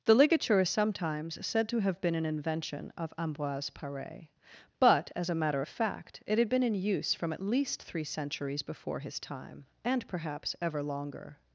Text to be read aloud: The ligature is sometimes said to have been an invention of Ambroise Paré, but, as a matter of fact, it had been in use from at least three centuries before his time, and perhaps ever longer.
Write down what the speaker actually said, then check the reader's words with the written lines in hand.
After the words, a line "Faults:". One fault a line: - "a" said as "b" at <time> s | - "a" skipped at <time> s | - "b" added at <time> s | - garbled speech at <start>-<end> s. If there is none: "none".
The ligature is sometimes said to have been an invention of Ambroise Paré, but, as a matter of fact, it had been in use from at least three centuries before his time, and perhaps ever longer.
Faults:
none